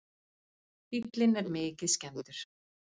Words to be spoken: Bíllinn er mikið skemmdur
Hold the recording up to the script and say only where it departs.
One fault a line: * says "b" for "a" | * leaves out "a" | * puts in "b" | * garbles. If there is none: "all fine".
all fine